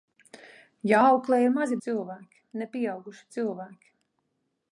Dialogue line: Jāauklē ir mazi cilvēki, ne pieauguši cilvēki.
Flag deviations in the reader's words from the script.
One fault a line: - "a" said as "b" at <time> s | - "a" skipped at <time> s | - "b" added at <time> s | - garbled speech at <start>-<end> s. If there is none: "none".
none